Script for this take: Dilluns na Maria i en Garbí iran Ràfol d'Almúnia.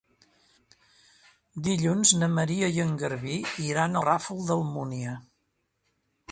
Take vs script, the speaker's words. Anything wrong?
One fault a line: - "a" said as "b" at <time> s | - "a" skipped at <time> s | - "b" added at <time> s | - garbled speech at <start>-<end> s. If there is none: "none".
none